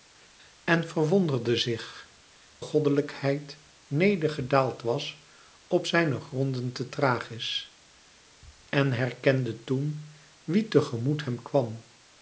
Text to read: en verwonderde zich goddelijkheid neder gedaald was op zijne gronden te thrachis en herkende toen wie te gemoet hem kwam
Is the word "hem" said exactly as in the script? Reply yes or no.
yes